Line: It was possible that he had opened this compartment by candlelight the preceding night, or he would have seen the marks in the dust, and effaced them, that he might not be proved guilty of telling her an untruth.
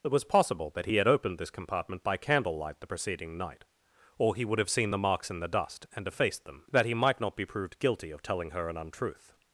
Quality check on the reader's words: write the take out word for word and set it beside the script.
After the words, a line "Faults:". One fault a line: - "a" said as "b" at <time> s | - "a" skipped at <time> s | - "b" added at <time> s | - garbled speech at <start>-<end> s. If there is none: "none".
It was possible that he had opened this compartment by candlelight the preceding night, or he would have seen the marks in the dust, and effaced them, that he might not be proved guilty of telling her an untruth.
Faults:
none